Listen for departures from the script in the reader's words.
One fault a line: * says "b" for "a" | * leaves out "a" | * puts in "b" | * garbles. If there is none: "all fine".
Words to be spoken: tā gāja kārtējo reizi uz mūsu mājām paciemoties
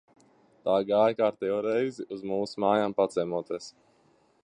all fine